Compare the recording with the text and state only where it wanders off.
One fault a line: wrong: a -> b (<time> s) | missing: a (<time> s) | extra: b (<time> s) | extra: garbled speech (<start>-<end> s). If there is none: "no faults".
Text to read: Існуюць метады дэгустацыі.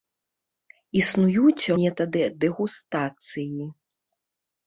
no faults